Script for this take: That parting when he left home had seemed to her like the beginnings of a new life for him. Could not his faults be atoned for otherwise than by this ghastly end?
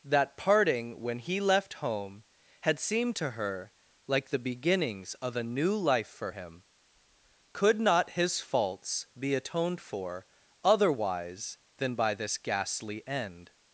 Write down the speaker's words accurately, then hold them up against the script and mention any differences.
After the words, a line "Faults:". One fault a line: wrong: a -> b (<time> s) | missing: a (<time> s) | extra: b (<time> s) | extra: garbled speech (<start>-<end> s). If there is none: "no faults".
That parting when he left home had seemed to her like the beginnings of a new life for him. Could not his faults be atoned for otherwise than by this ghastly end?
Faults:
no faults